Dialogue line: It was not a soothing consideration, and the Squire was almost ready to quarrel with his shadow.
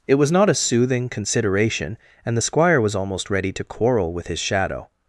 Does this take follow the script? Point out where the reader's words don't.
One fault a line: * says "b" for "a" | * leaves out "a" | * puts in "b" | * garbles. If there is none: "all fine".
all fine